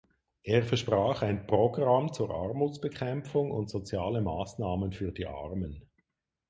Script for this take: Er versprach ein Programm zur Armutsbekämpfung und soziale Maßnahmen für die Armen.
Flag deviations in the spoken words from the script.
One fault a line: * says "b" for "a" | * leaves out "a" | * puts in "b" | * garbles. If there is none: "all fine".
all fine